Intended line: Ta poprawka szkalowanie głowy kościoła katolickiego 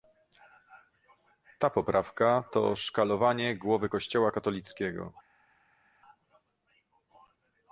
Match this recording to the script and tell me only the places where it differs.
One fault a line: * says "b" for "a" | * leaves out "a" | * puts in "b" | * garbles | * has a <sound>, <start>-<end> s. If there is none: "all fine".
* puts in "to"